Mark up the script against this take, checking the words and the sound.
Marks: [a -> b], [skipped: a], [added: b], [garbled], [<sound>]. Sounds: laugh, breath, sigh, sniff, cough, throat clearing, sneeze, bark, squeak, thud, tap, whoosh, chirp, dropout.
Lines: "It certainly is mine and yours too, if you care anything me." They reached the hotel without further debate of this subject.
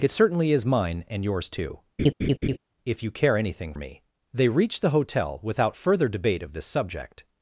"It certainly is mine and yours too, [laugh] if you care anything me." They reached the hotel without further debate of this subject.